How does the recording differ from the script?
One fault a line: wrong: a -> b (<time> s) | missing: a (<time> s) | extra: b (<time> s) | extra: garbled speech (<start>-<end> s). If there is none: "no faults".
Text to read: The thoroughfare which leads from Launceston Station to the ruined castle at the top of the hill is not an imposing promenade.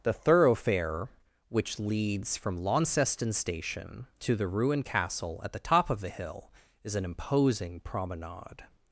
missing: not (6.9 s)